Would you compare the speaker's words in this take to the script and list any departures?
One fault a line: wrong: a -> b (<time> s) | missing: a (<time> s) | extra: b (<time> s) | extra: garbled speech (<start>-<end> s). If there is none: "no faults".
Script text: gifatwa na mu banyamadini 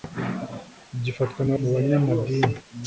no faults